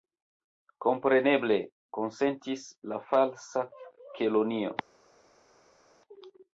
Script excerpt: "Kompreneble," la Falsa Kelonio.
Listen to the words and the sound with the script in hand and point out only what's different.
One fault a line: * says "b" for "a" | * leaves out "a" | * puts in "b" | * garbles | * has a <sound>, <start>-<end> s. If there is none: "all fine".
* puts in "konsentis"